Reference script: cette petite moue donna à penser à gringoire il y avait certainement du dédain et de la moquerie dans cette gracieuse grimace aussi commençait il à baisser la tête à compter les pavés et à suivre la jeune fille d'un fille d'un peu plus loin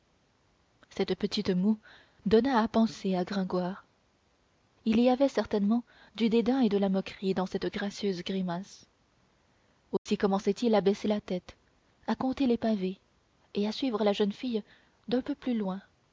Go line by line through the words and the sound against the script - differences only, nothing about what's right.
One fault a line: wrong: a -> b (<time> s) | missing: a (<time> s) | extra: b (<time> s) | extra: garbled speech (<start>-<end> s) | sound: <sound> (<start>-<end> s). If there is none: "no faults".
sound: dropout (10.0-10.1 s)
missing: fille d'un (15.2 s)